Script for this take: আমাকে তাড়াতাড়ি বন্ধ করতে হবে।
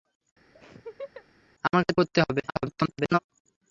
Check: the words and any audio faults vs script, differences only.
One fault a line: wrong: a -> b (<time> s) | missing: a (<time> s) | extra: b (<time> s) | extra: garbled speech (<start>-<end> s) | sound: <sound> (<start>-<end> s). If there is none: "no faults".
sound: laugh (0.6-1.3 s)
missing: তাড়াতাড়ি বন্ধ (1.9 s)
extra: garbled speech (2.5-3.2 s)